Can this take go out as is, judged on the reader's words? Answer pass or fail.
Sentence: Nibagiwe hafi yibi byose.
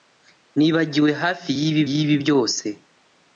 fail